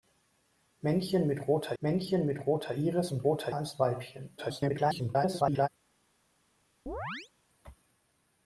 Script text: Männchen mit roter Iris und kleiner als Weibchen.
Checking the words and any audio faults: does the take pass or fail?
fail